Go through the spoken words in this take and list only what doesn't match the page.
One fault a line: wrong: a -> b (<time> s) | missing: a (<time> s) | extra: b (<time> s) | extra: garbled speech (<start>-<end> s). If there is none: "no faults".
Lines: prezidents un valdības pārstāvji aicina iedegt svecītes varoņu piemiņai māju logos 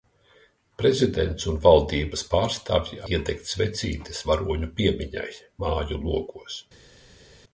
missing: aicina (3.0 s)